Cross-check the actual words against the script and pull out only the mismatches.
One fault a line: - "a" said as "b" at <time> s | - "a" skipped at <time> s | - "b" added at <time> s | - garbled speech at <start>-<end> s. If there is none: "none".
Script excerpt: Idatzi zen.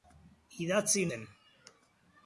none